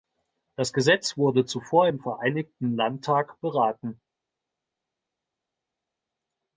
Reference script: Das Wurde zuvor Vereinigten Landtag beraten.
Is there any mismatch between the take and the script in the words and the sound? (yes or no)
yes